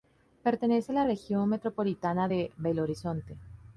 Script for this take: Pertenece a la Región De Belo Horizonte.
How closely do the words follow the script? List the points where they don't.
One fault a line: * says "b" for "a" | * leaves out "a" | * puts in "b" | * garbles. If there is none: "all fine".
* puts in "Metropolitana"